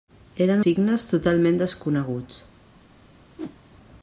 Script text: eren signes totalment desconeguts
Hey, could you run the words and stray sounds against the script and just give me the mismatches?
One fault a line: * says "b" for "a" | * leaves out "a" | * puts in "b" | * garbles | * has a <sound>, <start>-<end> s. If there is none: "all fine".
* has a whoosh, 3.4-3.6 s